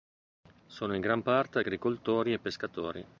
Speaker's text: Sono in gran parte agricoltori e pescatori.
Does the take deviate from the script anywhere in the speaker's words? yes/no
no